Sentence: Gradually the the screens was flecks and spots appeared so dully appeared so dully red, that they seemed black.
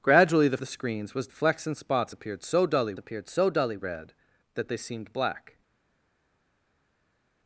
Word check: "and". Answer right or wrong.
right